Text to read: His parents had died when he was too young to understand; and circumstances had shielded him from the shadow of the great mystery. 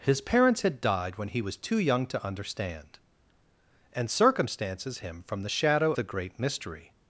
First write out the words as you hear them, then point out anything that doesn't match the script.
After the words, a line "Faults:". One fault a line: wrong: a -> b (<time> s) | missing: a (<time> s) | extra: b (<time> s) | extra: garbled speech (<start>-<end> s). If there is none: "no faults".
His parents had died when he was too young to understand; and circumstances him from the shadow the great mystery.
Faults:
missing: had shielded (5.0 s)
missing: of (5.9 s)